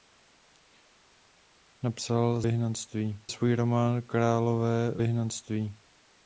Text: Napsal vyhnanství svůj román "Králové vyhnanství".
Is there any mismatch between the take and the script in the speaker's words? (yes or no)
no